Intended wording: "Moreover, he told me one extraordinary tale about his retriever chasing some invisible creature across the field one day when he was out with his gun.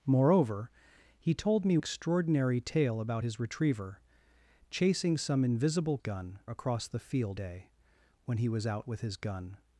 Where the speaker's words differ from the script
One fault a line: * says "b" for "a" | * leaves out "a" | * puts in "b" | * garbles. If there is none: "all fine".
* leaves out "one"
* says "gun" for "creature"
* leaves out "one"